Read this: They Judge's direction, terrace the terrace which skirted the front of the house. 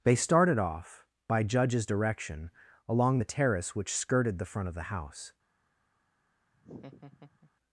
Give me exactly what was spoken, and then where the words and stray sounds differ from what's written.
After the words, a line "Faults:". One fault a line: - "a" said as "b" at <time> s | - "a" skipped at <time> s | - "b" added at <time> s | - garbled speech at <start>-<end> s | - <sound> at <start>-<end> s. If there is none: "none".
They started off, by Judge's direction, along the terrace which skirted the front of the house.
Faults:
- "started off by" added at 0.1 s
- "terrace" said as "along" at 2.9 s
- laugh at 6.5-7.5 s